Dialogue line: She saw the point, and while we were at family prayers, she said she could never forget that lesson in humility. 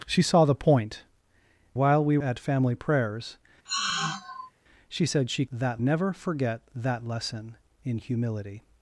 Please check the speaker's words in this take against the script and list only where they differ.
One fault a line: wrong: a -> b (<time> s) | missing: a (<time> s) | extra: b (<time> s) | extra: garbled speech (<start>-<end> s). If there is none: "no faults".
missing: and (1.0 s)
missing: were (2.2 s)
wrong: could -> that (5.5 s)